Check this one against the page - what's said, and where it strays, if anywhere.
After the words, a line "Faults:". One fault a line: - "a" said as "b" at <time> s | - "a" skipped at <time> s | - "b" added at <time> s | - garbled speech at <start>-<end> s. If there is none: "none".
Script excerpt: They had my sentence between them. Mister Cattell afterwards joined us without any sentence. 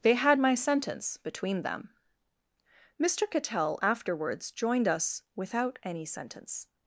They had my sentence between them. Mister Cattell afterwards joined us without any sentence.
Faults:
none